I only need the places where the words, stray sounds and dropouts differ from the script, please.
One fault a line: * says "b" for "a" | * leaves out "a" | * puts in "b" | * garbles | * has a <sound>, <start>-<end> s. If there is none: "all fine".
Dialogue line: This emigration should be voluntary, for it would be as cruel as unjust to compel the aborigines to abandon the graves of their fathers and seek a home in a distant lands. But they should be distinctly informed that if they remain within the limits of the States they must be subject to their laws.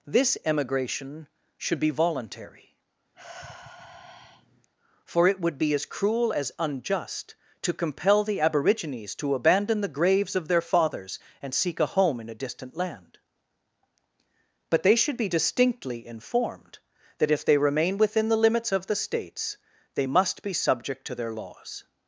* has a sigh, 3.1-4.7 s
* says "land" for "lands"